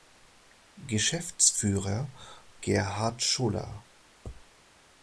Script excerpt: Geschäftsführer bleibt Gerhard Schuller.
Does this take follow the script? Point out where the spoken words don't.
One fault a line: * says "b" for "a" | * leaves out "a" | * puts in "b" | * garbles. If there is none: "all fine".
* leaves out "bleibt"